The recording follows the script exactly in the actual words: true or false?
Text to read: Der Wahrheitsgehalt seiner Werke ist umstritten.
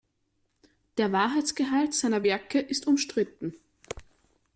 true